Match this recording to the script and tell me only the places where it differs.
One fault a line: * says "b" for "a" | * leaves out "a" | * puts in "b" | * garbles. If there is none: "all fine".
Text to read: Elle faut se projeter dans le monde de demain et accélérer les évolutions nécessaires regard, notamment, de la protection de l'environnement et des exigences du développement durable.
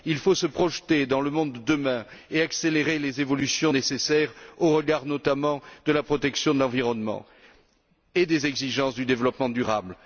* says "Il" for "Elle"
* puts in "au"